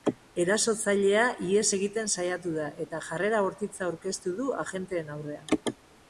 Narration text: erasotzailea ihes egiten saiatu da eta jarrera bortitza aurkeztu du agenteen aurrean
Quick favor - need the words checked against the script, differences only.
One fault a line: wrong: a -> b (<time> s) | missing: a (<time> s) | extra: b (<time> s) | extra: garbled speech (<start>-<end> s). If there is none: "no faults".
no faults